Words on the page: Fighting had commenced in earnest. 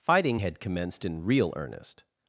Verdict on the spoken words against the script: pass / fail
fail